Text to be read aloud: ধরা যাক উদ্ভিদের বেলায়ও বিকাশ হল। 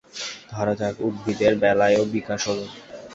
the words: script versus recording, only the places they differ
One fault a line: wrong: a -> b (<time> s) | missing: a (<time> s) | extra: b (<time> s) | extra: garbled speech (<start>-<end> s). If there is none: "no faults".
no faults